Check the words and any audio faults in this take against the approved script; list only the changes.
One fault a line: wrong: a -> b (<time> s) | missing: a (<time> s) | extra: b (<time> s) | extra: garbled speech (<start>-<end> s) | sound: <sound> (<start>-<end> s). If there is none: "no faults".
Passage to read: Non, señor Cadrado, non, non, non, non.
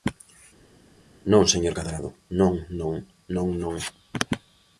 no faults